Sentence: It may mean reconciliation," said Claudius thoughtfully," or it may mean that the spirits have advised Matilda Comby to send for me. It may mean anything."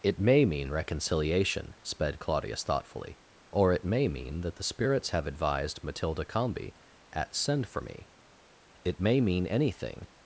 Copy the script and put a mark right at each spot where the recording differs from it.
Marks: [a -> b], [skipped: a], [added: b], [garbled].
It may mean reconciliation," [said -> sped] Claudius thoughtfully," or it may mean that the spirits have advised Matilda Comby [to -> at] send for me. It may mean anything."